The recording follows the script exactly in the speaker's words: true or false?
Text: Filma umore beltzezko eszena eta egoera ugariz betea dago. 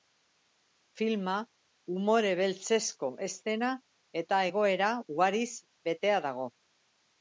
true